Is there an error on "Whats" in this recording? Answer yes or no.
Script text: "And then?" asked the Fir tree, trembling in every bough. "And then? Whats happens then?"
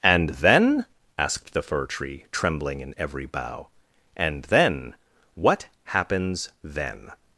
yes